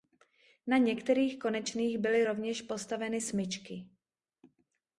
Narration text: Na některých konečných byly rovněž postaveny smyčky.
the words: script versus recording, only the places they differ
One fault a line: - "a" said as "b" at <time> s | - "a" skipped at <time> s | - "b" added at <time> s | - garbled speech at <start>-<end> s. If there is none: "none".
none